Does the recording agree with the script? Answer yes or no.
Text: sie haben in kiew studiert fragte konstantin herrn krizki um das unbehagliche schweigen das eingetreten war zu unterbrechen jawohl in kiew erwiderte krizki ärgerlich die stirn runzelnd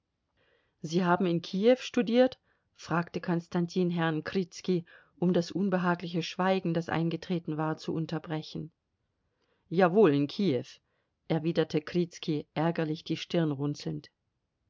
yes